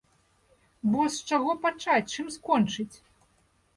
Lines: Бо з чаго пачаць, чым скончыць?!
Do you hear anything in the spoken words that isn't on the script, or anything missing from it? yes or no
no